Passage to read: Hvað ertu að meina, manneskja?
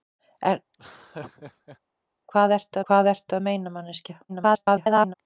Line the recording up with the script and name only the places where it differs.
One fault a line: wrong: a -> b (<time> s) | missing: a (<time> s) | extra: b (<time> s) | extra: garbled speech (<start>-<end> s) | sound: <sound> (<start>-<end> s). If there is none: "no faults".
sound: laugh (0.7-1.8 s)
extra: hvað ertu (2.9 s)
extra: garbled speech (4.3-5.1 s)